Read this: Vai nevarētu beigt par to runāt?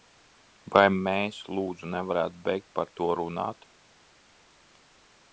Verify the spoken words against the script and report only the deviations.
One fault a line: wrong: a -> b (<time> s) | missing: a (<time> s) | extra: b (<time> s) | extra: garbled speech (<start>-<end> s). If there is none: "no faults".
extra: mēs lūdzu (1.1 s)